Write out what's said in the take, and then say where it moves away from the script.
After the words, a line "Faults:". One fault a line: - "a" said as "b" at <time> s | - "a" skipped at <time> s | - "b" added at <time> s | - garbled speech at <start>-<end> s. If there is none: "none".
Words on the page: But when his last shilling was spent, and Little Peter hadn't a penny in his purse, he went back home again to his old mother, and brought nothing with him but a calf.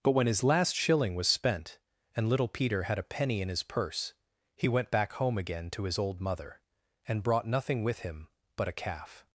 But when his last shilling was spent, and Little Peter had a penny in his purse, he went back home again to his old mother, and brought nothing with him but a calf.
Faults:
- "hadn't" said as "had" at 2.8 s